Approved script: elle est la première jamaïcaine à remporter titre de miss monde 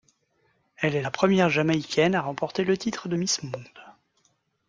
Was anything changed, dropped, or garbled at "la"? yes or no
no